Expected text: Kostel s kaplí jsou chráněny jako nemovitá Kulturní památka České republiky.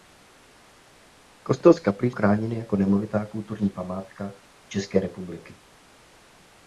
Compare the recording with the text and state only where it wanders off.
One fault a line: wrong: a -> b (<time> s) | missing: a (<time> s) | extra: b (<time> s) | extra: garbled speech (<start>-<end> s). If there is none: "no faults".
missing: jsou (2.1 s)